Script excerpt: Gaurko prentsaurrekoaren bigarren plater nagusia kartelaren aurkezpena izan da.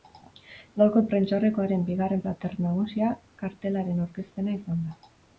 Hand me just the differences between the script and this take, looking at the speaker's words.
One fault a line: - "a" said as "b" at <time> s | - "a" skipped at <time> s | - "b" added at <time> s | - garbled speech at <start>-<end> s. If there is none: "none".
none